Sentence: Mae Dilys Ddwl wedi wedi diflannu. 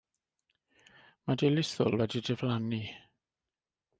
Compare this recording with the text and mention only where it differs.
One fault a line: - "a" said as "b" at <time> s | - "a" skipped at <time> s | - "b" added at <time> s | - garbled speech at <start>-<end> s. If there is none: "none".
- "wedi" skipped at 2.2 s